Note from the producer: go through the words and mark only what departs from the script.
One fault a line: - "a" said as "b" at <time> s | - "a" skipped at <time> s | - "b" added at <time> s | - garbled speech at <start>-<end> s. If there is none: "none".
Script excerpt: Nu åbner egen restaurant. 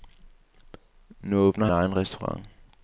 none